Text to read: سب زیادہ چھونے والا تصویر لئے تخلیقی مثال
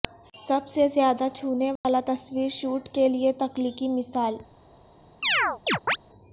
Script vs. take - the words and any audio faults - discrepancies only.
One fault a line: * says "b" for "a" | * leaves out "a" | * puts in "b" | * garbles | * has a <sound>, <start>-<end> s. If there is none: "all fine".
* puts in "سے"
* has a dropout, 1.8-1.8 s
* puts in "شوٹ کے"
* has a chirp, 5.2-6.0 s